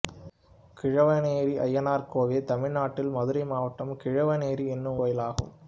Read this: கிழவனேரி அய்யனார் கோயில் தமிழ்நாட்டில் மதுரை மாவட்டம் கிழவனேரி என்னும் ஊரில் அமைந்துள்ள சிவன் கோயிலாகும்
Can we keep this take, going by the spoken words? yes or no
no